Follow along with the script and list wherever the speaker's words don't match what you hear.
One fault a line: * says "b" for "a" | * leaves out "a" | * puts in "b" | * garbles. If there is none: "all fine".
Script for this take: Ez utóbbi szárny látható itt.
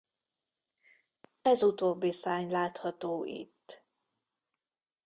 all fine